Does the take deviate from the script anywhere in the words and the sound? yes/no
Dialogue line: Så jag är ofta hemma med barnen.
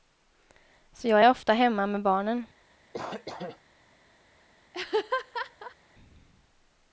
yes